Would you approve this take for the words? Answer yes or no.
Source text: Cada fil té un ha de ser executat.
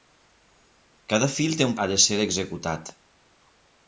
yes